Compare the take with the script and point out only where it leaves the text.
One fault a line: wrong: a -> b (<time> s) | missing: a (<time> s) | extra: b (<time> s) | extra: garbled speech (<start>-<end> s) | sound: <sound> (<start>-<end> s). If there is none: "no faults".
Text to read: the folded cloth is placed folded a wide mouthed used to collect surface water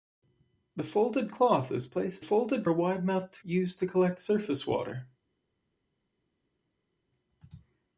no faults